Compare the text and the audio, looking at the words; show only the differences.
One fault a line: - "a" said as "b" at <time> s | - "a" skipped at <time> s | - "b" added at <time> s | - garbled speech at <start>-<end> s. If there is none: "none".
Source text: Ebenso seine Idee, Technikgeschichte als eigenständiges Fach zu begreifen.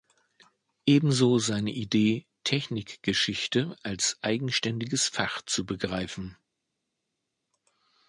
none